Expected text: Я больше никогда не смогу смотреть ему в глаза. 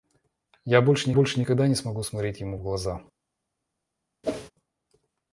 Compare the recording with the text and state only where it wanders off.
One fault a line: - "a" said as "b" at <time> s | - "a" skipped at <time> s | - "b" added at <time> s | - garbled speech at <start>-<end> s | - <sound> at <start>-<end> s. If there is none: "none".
- "больше" added at 1.1 s
- whoosh at 4.2-4.5 s